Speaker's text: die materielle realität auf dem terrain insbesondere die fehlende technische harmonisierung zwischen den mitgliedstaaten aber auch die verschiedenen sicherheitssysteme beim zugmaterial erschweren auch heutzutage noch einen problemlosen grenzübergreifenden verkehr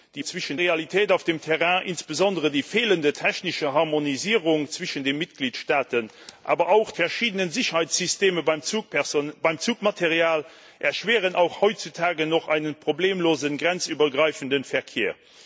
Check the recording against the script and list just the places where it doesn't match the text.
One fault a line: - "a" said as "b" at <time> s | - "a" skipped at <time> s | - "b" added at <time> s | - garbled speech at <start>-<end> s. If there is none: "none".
- "materielle" said as "zwischen" at 0.2 s
- "die" skipped at 6.9 s